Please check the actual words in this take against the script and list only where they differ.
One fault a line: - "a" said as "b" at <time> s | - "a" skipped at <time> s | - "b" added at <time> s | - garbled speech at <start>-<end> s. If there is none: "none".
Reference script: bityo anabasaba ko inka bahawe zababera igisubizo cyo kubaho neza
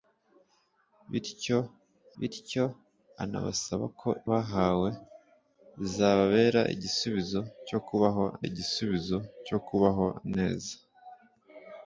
- "bityo" added at 2.2 s
- "inka" skipped at 4.1 s
- "igisubizo cyo kubaho" added at 8.5 s